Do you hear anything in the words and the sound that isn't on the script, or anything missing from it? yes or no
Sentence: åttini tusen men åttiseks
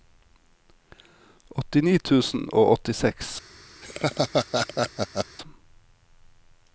yes